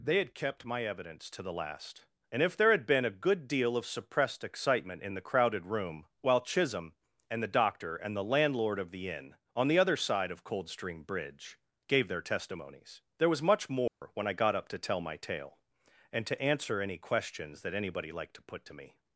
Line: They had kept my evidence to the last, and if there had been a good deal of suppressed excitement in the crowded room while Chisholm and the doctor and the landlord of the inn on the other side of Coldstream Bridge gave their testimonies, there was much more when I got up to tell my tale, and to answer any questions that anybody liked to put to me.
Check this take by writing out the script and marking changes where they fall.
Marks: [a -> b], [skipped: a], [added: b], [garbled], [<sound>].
They had kept my evidence to the last, and if there had been a good deal of suppressed excitement in the crowded room while Chisholm and the doctor and the landlord of the inn on the other side of Coldstream Bridge gave their testimonies, there was much more [dropout] when I got up to tell my tale, and to answer any questions that anybody liked to put to me.